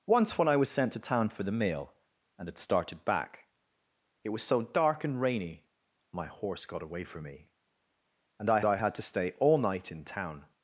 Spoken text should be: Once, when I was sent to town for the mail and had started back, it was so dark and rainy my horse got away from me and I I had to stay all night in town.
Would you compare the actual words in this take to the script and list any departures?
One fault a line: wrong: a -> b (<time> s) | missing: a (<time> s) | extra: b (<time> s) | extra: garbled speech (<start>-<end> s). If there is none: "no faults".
no faults